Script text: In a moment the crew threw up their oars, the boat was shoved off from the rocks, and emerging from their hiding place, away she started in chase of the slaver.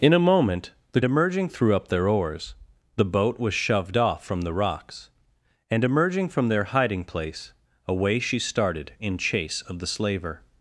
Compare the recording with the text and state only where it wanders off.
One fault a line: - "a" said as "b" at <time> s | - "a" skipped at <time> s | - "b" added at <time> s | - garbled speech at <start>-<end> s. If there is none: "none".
- "crew" said as "emerging" at 1.0 s